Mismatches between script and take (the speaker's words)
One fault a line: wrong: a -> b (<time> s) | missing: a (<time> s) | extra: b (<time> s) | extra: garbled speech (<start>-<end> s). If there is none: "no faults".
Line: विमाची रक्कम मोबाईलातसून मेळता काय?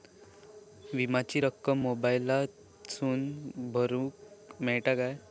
extra: भरुक (3.7 s)